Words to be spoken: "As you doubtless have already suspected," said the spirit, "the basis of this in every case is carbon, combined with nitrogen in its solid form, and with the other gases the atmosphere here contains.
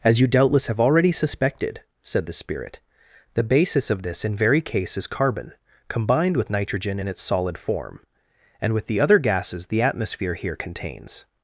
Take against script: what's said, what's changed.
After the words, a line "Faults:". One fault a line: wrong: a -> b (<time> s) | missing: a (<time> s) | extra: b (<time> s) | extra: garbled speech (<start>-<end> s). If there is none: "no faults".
"As you doubtless have already suspected," said the spirit, "the basis of this in very case is carbon, combined with nitrogen in its solid form, and with the other gases the atmosphere here contains.
Faults:
wrong: every -> very (4.3 s)